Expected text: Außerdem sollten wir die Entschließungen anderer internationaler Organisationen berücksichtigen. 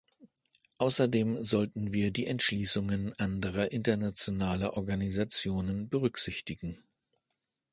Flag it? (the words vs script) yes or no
no